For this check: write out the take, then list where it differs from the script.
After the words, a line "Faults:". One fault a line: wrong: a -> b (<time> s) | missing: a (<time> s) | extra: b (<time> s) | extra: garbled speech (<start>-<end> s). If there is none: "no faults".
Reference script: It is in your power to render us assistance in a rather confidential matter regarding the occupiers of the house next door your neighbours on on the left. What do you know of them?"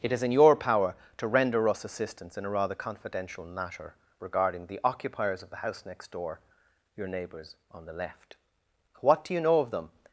It is in your power to render us assistance in a rather confidential matter regarding the occupiers of the house next door your neighbours on the left. What do you know of them?"
Faults:
missing: on (7.8 s)